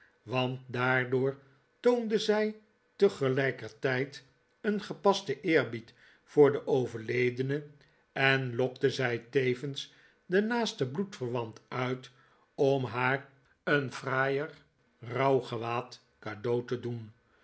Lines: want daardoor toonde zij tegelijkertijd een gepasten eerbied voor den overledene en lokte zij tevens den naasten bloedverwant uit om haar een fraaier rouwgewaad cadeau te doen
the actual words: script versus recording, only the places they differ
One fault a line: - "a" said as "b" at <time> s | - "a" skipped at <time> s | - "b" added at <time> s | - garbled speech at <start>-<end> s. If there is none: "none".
none